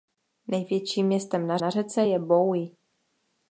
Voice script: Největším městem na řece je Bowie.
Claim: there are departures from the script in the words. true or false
true